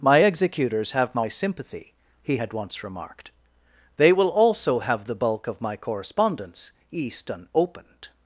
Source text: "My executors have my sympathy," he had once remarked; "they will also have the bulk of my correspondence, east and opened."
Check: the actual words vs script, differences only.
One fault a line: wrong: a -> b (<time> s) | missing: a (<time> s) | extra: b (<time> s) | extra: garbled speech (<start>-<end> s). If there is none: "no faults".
no faults